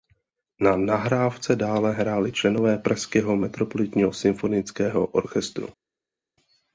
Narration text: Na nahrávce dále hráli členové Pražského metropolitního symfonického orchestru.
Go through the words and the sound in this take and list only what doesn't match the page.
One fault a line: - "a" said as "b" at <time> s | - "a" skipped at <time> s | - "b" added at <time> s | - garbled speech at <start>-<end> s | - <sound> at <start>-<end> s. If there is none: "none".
none